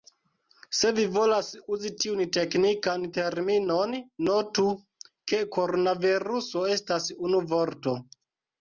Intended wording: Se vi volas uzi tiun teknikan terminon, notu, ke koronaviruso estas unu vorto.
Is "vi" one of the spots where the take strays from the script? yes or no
no